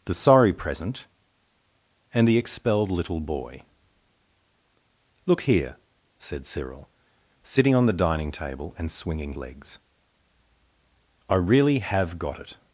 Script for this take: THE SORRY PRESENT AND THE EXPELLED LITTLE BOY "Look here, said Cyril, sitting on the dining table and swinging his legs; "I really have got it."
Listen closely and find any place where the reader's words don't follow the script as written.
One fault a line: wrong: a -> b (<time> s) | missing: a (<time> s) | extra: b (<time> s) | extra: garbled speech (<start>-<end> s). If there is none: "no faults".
missing: his (9.3 s)